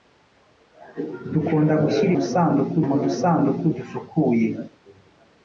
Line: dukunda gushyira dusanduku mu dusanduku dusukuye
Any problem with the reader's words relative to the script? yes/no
no